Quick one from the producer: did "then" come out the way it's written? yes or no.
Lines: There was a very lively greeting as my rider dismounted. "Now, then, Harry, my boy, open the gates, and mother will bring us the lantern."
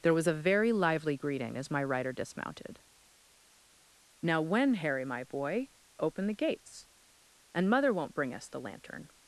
no